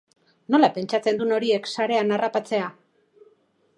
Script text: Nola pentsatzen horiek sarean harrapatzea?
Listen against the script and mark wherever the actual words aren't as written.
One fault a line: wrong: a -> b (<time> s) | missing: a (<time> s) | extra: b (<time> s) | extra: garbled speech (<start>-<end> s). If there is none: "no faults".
extra: dun (1.2 s)